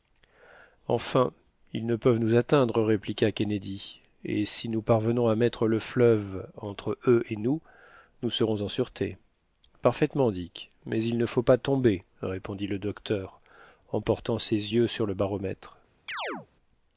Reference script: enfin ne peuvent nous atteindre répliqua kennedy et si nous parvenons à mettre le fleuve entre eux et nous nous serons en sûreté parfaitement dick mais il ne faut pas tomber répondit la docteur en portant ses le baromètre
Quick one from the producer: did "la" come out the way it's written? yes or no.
no